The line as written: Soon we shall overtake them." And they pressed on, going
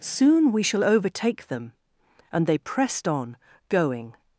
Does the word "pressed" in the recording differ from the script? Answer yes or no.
no